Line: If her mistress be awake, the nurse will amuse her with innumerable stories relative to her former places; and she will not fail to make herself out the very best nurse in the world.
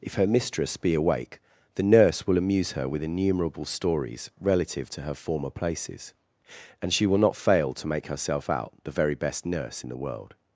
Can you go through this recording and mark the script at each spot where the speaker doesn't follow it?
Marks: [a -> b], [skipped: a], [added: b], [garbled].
If her mistress be awake, the nurse will amuse her with innumerable stories relative to her former places; and she will not fail to make herself out the very best nurse in the world.